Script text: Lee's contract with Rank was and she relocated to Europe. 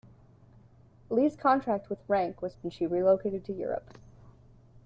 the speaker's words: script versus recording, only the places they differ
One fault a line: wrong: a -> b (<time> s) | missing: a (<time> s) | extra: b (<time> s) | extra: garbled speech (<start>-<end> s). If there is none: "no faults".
no faults